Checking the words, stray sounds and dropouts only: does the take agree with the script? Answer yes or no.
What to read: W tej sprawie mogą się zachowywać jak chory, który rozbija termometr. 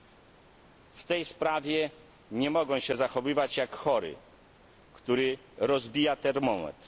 no